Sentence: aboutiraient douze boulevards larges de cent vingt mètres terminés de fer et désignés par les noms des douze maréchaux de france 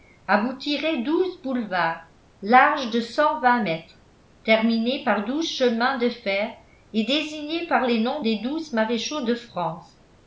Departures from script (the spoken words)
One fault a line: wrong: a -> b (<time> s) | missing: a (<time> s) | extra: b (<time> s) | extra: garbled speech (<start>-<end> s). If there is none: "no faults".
extra: par douze chemins (5.0 s)